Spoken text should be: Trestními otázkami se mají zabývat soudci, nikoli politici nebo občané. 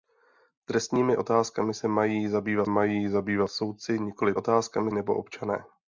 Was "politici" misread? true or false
true